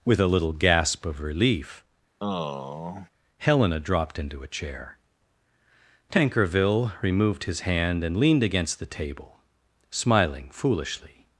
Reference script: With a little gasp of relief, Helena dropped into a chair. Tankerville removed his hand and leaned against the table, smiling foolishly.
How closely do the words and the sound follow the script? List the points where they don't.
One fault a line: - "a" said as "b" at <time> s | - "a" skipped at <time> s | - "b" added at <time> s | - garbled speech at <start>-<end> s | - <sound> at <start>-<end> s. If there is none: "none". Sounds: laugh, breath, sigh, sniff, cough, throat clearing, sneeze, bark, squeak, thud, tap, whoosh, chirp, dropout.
- sigh at 2.2-3.1 s